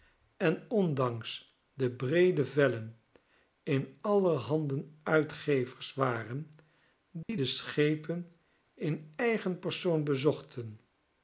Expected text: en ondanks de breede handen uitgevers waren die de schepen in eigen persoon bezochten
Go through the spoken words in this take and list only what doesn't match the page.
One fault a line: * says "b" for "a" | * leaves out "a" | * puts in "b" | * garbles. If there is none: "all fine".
* puts in "vellen in aller"